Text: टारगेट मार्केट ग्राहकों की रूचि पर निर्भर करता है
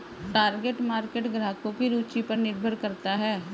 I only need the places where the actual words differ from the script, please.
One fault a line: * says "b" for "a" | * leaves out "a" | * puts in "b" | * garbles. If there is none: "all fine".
all fine